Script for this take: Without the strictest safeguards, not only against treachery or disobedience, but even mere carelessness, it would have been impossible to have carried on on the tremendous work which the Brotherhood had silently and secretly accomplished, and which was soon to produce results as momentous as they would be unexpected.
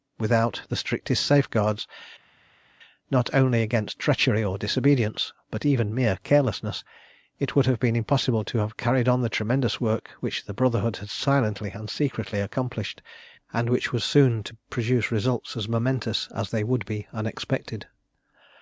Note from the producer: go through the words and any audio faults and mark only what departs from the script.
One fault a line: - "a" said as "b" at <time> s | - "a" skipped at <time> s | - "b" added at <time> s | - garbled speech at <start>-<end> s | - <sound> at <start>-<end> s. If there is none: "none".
- "on" skipped at 9.2 s